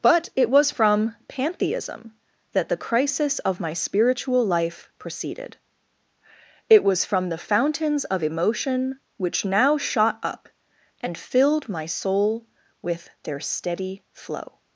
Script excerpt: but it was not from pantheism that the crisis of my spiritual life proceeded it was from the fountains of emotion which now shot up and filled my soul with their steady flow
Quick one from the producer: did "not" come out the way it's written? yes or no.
no